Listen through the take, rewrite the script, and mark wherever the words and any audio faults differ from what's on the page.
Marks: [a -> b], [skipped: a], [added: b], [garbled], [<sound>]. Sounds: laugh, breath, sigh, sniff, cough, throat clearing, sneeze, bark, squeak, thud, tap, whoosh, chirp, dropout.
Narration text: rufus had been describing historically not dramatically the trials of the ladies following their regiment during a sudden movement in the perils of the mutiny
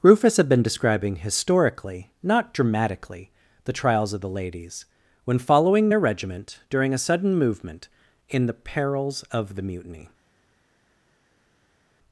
rufus had been describing historically not dramatically the trials of the ladies [added: when] following their regiment during a sudden movement in the perils of the mutiny